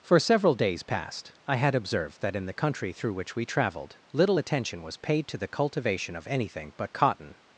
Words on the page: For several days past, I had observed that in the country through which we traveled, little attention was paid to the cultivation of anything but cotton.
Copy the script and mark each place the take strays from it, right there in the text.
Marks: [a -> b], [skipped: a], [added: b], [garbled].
For several days past, I had observed that in the country through which we traveled, little attention was paid to the cultivation of anything but cotton.